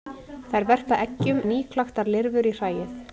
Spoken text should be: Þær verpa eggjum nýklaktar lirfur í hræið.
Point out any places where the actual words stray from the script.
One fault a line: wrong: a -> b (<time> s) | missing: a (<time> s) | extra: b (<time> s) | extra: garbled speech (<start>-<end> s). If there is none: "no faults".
no faults